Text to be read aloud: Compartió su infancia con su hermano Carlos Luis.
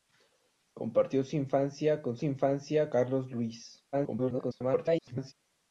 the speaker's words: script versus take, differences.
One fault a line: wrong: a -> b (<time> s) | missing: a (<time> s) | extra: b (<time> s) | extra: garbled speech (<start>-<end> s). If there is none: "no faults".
wrong: hermano -> infancia (2.2 s)
extra: garbled speech (3.9-5.3 s)